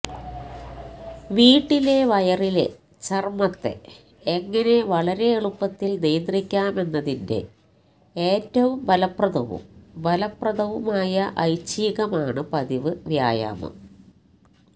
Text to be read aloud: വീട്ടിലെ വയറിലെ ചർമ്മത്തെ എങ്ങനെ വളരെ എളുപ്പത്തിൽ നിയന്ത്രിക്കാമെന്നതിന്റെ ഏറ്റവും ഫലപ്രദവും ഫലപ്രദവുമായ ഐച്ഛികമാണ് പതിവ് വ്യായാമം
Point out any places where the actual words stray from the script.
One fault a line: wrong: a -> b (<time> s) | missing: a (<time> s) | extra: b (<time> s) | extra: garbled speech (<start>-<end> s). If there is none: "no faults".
no faults